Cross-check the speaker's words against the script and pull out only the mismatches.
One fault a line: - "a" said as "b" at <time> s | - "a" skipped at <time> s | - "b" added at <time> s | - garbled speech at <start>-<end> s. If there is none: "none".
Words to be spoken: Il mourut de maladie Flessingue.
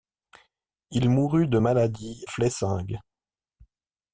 none